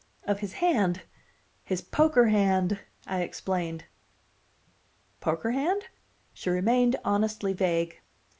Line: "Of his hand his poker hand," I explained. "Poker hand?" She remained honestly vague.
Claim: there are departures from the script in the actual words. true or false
false